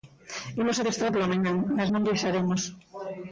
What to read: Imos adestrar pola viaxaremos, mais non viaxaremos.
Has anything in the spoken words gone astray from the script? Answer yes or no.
yes